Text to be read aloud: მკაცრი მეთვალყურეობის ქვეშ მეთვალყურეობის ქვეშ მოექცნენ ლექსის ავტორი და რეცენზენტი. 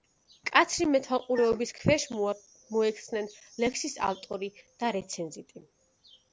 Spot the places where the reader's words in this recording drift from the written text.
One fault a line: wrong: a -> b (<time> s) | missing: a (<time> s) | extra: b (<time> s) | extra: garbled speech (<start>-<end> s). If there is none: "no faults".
missing: მეთვალყურეობის ქვეშ (2.1 s)